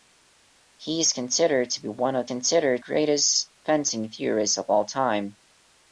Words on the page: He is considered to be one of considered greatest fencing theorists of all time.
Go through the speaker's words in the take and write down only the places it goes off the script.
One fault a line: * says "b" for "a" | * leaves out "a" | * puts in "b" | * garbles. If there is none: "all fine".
all fine